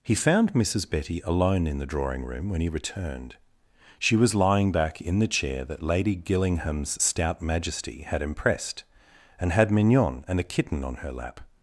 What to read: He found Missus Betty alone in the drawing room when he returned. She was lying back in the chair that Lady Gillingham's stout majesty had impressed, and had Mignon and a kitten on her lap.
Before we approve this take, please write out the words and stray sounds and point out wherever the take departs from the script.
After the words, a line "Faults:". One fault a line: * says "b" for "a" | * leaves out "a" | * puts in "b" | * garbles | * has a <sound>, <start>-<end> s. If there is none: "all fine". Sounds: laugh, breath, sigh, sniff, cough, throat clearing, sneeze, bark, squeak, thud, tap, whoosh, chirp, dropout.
He found Missus Betty alone in the drawing room when he returned. She was lying back in the chair that Lady Gillingham's stout majesty had impressed, and had Mignon and a kitten on her lap.
Faults:
all fine